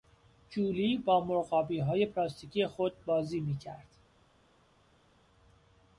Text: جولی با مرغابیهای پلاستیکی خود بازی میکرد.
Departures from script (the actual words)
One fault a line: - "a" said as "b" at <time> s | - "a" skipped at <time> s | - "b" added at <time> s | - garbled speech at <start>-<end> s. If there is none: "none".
none